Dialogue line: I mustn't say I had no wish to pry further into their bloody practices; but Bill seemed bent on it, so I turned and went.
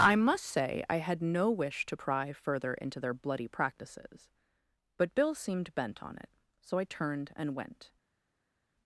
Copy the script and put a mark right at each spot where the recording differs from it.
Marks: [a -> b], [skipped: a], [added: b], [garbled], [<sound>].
I [mustn't -> must] say I had no wish to pry further into their bloody practices; but Bill seemed bent on it, so I turned and went.